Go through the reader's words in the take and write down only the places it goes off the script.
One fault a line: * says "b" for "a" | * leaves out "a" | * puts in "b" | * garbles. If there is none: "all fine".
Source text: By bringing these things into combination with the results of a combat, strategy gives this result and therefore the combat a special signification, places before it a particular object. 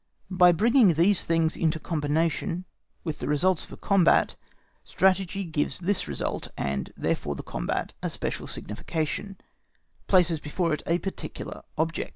all fine